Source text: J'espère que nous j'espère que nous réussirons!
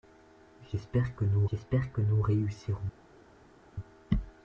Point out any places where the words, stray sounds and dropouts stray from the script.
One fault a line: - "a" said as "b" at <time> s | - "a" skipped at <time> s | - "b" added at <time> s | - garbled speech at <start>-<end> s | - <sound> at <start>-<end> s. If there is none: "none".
none